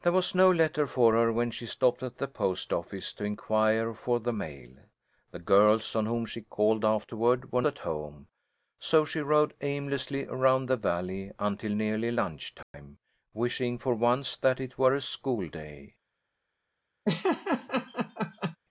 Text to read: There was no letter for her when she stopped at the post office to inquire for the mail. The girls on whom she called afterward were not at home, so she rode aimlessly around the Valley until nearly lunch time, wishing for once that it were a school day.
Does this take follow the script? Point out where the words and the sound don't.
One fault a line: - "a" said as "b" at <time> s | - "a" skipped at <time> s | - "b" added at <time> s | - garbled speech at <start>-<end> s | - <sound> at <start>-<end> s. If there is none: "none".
- "not" skipped at 7.6 s
- dropout at 12.6-12.7 s
- laugh at 17.1-18.6 s